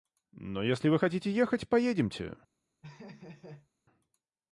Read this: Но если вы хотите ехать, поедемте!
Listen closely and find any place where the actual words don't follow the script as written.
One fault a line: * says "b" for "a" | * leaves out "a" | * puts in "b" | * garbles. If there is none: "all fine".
all fine